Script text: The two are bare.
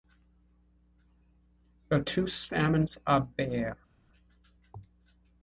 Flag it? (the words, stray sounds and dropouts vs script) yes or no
yes